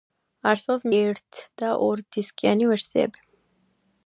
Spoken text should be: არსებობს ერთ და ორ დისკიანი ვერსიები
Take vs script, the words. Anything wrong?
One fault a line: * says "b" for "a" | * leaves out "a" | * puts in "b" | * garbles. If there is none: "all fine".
all fine